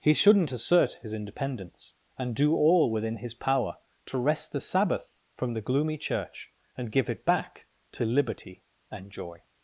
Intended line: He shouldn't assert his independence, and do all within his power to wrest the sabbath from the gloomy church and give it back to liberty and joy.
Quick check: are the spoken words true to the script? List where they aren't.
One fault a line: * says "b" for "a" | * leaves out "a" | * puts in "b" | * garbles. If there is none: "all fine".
all fine